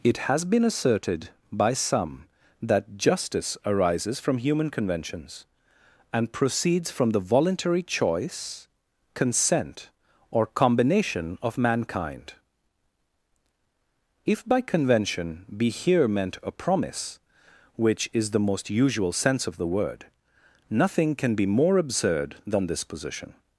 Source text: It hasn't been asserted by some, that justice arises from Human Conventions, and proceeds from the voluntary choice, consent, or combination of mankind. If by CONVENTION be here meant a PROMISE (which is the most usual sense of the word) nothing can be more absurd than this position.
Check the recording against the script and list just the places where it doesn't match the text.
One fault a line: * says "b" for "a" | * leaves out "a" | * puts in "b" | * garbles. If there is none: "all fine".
* says "has" for "hasn't"